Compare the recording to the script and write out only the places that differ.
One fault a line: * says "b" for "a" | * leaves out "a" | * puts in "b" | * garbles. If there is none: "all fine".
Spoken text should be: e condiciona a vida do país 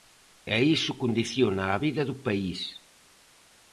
* puts in "iso"